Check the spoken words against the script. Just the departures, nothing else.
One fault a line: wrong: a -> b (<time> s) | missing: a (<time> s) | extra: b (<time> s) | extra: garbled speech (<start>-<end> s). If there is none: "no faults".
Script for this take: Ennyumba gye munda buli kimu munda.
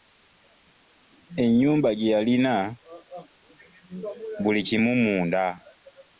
wrong: munda -> yalina (2.1 s)